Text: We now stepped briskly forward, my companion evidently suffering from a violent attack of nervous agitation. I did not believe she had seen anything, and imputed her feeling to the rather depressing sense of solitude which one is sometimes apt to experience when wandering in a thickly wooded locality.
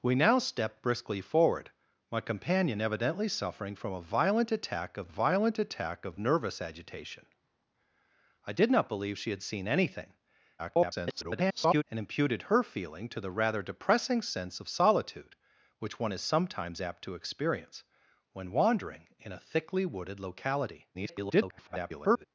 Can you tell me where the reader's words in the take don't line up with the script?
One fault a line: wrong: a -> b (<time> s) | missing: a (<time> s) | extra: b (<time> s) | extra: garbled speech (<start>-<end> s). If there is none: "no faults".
extra: violent attack of (5.1 s)
extra: garbled speech (10.6-11.8 s)
extra: garbled speech (20.9-22.3 s)